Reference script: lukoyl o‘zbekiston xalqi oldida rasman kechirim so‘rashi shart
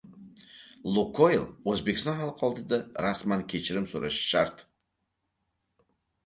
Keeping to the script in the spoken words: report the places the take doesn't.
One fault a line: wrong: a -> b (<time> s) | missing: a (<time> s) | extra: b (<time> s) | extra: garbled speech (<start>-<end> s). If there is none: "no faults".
no faults